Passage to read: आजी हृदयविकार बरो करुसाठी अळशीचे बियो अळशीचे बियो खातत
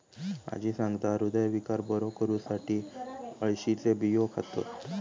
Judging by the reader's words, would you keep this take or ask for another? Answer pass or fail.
fail